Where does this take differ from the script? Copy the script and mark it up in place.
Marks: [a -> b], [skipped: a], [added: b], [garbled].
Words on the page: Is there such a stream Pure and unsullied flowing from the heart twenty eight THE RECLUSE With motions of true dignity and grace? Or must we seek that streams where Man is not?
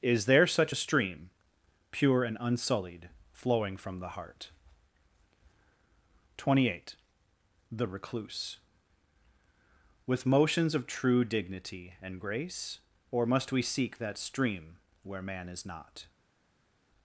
Is there such a stream Pure and unsullied flowing from the heart twenty eight THE RECLUSE With motions of true dignity and grace? Or must we seek that [streams -> stream] where Man is not?